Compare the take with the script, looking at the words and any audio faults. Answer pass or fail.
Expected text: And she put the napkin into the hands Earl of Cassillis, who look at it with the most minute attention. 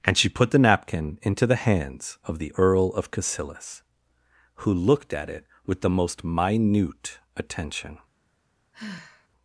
fail